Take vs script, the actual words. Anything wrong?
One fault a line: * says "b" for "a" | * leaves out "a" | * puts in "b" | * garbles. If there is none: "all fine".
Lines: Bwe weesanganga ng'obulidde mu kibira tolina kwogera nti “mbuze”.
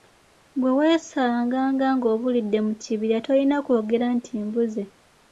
all fine